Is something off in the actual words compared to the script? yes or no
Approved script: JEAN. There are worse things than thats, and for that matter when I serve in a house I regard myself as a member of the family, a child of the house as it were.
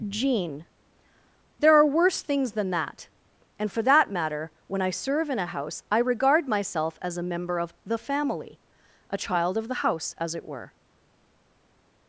yes